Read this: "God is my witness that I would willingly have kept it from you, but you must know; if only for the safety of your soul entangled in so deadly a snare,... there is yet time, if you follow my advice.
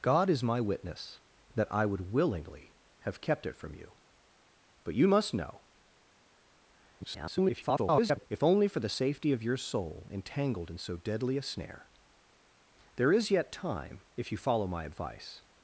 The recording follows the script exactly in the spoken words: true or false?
false